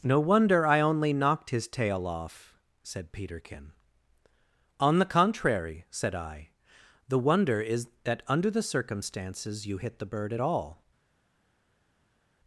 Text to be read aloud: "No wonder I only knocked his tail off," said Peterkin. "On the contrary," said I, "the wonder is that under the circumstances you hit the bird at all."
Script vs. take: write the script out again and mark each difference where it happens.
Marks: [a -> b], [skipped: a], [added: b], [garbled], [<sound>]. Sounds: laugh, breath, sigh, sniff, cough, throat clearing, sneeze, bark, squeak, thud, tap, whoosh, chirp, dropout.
"No wonder I only knocked his tail off," said Peterkin. "On the contrary," said I, "the wonder is that under the circumstances you hit the bird at all."